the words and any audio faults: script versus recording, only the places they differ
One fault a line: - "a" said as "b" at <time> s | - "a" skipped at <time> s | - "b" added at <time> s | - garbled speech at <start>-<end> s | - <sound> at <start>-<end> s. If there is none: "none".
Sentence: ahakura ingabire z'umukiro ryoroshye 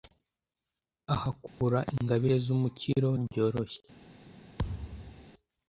- dropout at 1.5-1.6 s
- thud at 4.6-5.3 s